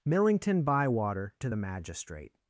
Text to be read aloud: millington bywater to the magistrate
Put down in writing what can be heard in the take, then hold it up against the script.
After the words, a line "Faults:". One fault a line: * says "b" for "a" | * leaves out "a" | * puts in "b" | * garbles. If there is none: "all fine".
millington bywater to the magistrate
Faults:
all fine